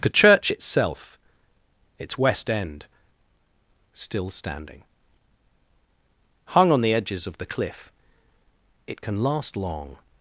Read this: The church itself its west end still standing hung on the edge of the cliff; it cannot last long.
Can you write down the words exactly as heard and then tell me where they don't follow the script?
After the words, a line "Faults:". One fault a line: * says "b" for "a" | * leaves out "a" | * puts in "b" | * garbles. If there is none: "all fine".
The church itself its west end still standing hung on the edges of the cliff; it can last long.
Faults:
* says "edges" for "edge"
* says "can" for "cannot"